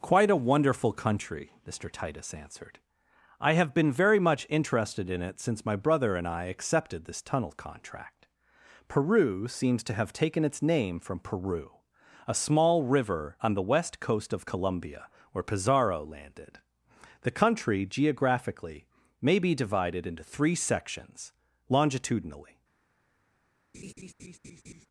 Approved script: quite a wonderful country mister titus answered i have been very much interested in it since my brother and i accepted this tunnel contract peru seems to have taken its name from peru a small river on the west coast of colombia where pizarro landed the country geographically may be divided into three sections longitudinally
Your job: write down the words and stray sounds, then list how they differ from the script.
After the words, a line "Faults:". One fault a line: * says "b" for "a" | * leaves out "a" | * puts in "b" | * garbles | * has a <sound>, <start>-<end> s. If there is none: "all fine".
quite a wonderful country mister titus answered i have been very much interested in it since my brother and i accepted this tunnel contract peru seems to have taken its name from peru a small river on the west coast of colombia where pizarro landed the country geographically may be divided into three sections longitudinally
Faults:
* has a laugh, 23.7-24.9 s